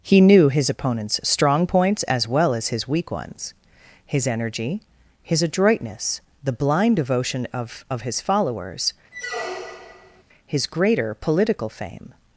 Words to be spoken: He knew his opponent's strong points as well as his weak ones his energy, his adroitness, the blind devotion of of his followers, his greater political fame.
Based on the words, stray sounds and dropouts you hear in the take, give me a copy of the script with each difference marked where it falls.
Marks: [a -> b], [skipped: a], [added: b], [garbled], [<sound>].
He knew his opponent's strong points as well as his weak ones his energy, his adroitness, the blind devotion of of his followers, [squeak] his greater political fame.